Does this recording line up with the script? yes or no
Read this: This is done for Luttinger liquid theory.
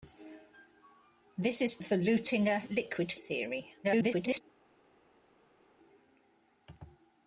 no